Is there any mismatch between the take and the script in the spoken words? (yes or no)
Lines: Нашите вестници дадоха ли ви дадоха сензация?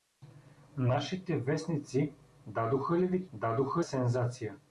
no